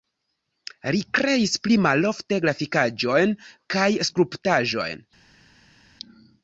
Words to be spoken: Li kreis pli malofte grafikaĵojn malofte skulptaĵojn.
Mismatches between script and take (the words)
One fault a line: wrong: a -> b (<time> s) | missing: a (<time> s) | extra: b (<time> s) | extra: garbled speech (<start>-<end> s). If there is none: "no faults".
wrong: malofte -> kaj (3.8 s)